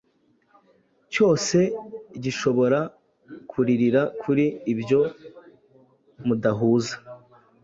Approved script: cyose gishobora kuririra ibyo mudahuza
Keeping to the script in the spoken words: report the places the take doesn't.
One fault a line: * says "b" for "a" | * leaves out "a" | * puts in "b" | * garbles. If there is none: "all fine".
* puts in "kuri"